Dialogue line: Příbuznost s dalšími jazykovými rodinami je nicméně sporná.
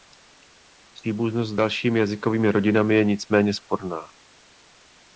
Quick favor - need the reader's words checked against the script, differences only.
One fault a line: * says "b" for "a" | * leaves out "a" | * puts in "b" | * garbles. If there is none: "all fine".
all fine